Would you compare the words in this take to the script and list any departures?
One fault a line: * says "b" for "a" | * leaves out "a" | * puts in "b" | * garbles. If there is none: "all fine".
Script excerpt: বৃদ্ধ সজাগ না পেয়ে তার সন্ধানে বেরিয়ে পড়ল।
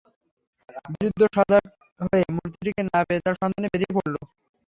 * puts in "হয়ে মূর্তিটিকে"